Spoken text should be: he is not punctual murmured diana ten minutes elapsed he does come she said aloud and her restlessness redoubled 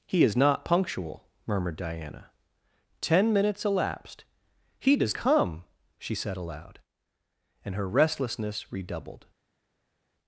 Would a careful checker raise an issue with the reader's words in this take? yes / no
no